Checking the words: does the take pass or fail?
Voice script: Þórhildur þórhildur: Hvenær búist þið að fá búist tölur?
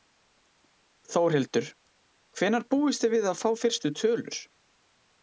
fail